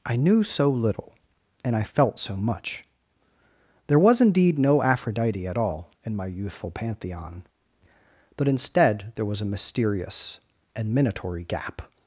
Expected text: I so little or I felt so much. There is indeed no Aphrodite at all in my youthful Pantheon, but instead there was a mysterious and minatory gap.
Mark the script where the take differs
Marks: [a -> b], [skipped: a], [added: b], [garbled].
I [added: knew] so little [or -> and] I felt so much. There [is -> was] indeed no Aphrodite at all in my youthful Pantheon, but instead there was a mysterious and minatory gap.